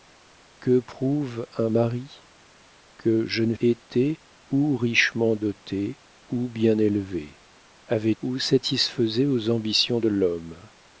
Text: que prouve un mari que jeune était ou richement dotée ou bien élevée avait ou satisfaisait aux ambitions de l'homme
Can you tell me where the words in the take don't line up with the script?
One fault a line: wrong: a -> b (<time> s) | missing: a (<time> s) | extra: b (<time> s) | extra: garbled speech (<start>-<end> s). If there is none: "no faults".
no faults